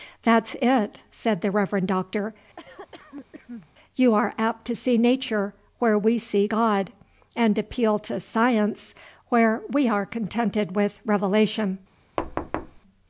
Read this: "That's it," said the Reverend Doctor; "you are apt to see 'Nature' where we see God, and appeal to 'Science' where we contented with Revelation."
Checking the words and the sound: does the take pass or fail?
fail